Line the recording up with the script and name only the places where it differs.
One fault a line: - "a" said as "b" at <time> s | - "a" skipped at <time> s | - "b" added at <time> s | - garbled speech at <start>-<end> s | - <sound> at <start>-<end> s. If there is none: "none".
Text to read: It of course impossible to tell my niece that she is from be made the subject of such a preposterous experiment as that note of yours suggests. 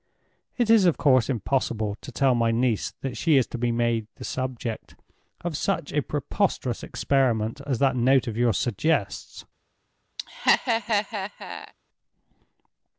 - "is" added at 0.7 s
- "from" said as "to" at 3.5 s
- laugh at 10.2-11.7 s